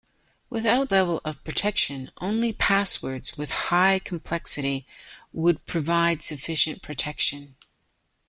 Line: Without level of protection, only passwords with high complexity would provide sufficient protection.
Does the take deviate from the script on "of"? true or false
false